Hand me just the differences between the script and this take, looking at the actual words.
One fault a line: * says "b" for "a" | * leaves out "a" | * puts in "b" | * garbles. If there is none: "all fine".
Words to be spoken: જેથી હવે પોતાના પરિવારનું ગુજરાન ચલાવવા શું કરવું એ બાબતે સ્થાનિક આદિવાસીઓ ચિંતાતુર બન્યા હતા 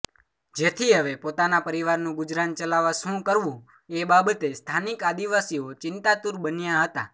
all fine